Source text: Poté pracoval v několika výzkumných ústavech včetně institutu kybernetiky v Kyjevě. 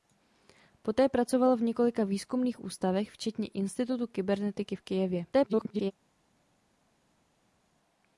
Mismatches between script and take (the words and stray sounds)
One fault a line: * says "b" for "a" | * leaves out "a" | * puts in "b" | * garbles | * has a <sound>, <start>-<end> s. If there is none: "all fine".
* garbles